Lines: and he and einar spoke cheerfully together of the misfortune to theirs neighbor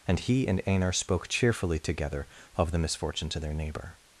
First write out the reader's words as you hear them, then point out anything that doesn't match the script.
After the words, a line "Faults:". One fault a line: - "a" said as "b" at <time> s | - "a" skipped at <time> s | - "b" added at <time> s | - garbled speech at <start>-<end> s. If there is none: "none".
and he and einar spoke cheerfully together of the misfortune to their neighbor
Faults:
- "theirs" said as "their" at 3.4 s